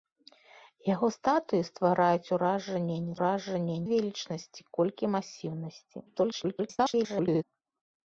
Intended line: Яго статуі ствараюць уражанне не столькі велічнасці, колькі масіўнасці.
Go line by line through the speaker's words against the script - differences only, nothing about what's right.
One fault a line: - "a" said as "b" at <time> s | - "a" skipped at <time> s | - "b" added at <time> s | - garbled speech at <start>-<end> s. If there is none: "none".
- "столькі" said as "уражанне" at 3.2 s
- garbled speech at 6.1-7.4 s